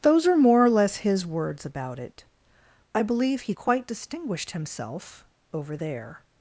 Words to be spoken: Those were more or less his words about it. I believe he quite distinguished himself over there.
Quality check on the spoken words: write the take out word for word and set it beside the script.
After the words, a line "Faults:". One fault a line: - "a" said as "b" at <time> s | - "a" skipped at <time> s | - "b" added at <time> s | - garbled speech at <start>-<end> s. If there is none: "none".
Those are more or less his words about it. I believe he quite distinguished himself over there.
Faults:
- "were" said as "are" at 0.2 s